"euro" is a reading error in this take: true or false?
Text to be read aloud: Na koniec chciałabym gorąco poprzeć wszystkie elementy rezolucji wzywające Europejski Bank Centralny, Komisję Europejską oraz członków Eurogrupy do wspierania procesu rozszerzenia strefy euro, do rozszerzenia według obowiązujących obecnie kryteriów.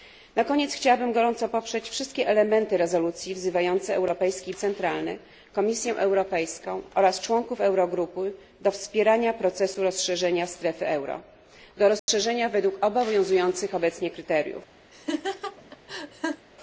false